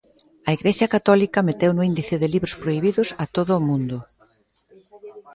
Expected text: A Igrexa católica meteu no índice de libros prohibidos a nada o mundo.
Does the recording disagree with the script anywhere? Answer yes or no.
yes